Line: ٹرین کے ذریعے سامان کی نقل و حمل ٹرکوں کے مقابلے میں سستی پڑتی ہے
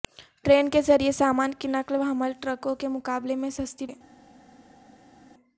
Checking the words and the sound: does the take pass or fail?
fail